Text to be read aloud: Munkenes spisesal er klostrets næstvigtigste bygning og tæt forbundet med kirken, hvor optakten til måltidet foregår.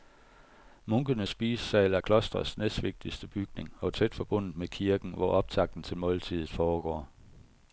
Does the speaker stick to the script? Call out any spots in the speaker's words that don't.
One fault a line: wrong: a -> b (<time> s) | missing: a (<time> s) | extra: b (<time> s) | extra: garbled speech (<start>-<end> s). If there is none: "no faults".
no faults